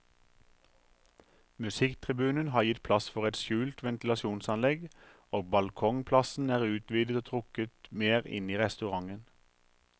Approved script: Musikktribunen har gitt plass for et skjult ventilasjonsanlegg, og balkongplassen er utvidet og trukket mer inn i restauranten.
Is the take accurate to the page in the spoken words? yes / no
yes